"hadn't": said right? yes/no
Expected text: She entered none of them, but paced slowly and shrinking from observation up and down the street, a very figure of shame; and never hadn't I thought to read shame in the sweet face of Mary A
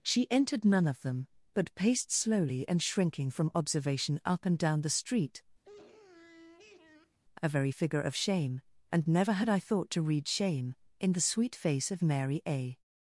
no